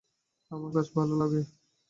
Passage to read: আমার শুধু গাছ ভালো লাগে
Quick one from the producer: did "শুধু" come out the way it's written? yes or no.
no